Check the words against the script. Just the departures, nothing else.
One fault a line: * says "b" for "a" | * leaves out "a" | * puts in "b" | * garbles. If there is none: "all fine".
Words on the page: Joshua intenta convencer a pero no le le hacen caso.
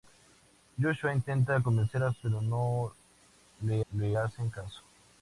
all fine